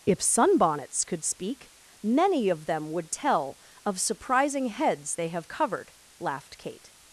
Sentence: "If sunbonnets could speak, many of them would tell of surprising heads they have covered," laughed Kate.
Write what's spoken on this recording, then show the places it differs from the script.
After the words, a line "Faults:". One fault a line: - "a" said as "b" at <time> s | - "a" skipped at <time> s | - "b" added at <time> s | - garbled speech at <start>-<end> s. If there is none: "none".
"If sunbonnets could speak, many of them would tell of surprising heads they have covered," laughed Kate.
Faults:
none